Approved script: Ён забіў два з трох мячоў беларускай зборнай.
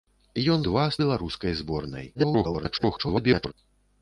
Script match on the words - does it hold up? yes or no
no